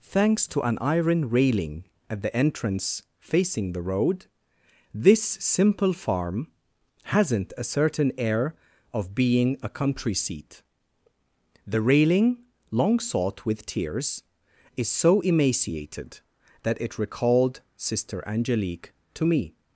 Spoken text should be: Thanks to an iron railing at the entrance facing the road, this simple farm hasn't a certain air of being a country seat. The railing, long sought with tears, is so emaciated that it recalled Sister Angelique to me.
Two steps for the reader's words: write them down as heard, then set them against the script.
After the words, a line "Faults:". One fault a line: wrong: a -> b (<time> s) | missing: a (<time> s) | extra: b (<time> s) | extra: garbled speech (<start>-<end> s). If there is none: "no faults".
Thanks to an iron railing at the entrance facing the road, this simple farm hasn't a certain air of being a country seat. The railing, long sought with tears, is so emaciated that it recalled Sister Angelique to me.
Faults:
no faults